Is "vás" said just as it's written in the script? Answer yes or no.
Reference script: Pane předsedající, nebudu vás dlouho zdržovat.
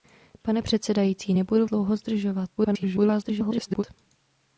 no